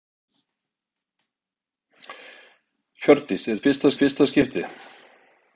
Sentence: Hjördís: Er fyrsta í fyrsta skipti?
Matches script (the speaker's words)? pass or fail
pass